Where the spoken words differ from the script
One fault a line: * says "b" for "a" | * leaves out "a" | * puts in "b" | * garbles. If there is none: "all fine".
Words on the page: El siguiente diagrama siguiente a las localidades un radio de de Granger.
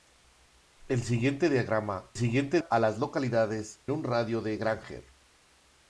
all fine